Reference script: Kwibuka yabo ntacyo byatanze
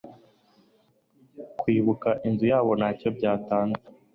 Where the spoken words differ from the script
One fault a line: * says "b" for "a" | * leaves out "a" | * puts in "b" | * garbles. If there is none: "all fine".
* puts in "inzu"